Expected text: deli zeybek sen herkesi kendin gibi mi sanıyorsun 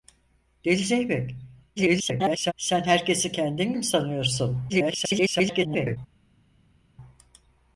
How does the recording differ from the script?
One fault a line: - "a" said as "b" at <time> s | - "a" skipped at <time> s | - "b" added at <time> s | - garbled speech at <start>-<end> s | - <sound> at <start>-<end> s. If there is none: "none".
- garbled speech at 1.8-2.5 s
- "gibi" skipped at 3.7 s
- garbled speech at 4.7-6.0 s